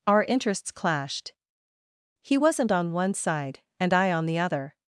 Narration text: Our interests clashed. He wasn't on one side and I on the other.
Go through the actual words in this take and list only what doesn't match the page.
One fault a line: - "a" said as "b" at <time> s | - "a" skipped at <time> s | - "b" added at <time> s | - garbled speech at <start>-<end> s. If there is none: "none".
none